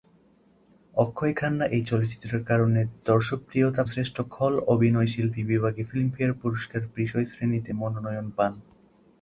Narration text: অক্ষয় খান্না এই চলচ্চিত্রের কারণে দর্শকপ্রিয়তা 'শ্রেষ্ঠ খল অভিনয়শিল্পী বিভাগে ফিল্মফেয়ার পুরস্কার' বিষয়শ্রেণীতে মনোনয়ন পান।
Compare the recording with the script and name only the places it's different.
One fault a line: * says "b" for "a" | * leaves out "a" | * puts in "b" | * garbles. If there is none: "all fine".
all fine